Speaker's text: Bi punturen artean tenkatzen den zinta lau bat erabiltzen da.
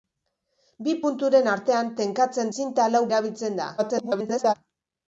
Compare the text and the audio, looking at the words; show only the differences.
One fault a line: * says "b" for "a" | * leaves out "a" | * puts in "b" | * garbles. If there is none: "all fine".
* leaves out "den"
* leaves out "bat"
* garbles